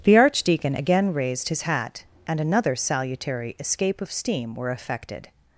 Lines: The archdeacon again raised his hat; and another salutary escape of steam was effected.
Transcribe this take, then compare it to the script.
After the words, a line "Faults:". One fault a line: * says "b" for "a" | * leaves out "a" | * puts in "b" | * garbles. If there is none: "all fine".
The archdeacon again raised his hat; and another salutary escape of steam were effected.
Faults:
* says "were" for "was"